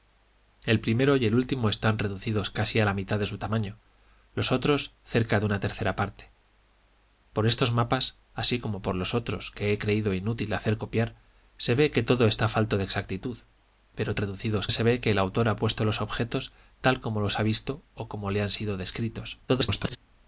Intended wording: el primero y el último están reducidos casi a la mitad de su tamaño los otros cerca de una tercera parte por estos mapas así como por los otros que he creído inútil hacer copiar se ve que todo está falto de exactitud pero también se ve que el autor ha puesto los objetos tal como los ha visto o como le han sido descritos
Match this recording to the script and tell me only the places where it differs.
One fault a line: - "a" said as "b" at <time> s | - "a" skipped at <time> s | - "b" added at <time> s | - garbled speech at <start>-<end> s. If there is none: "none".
- "también" said as "reducidos" at 14.2 s
- garbled speech at 19.5-20.0 s